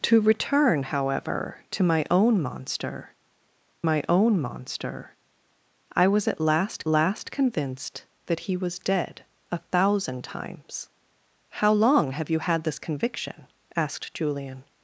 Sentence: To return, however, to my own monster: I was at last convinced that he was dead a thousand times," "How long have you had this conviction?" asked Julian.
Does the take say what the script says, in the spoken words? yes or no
no